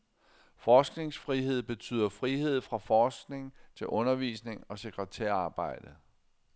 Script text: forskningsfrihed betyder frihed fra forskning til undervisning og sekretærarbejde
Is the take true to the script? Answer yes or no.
yes